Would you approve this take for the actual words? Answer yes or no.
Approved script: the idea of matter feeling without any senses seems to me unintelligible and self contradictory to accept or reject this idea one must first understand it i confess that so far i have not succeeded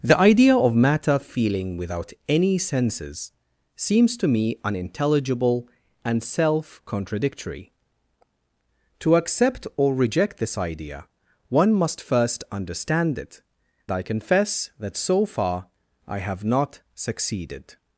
yes